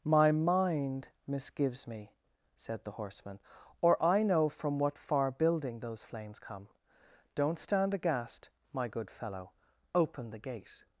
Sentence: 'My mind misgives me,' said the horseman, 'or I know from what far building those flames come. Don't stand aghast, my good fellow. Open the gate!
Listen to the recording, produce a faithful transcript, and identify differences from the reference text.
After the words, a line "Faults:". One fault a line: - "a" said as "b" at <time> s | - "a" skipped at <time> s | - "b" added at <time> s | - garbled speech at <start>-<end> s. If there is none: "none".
'My mind misgives me,' said the horseman, 'or I know from what far building those flames come. Don't stand aghast, my good fellow. Open the gate!
Faults:
none